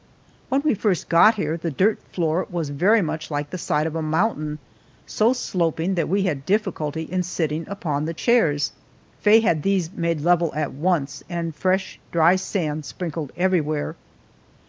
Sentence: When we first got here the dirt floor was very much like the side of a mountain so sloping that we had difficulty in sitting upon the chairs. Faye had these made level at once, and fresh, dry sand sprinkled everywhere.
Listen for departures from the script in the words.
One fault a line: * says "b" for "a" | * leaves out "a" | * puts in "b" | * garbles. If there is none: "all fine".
all fine